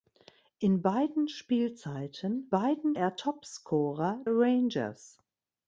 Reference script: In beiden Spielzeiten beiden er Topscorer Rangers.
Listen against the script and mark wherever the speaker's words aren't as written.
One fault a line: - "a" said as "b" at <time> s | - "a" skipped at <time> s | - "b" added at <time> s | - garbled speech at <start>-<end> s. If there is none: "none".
none